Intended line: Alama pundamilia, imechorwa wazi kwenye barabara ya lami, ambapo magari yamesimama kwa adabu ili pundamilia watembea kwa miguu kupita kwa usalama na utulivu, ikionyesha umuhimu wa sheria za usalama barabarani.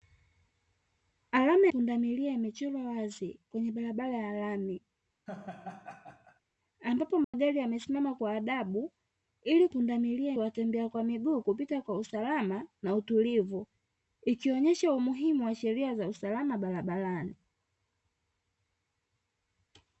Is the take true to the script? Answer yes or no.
yes